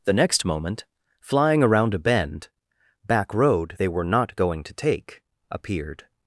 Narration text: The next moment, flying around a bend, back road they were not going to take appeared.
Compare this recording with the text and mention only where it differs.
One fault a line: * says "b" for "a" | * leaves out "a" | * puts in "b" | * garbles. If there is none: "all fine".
all fine